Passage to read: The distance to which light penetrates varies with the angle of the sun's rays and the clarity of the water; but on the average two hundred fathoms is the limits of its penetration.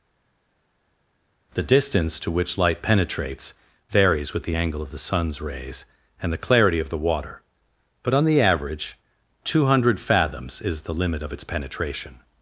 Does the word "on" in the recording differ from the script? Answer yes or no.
no